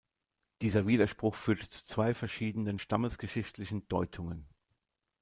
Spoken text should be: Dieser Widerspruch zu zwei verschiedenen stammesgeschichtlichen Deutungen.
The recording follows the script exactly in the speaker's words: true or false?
false